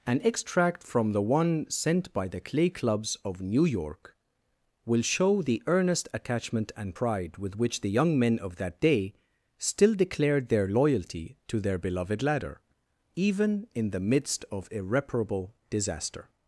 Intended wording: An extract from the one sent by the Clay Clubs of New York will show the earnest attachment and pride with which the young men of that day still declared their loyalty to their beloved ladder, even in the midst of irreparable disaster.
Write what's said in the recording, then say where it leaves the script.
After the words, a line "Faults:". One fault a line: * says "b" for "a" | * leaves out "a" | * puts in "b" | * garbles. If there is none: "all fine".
An extract from the one sent by the Clay Clubs of New York will show the earnest attachment and pride with which the young men of that day still declared their loyalty to their beloved ladder, even in the midst of irreparable disaster.
Faults:
all fine